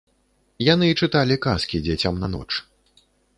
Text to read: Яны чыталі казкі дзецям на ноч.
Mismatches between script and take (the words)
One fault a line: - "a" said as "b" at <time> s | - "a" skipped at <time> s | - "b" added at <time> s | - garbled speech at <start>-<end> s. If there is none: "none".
none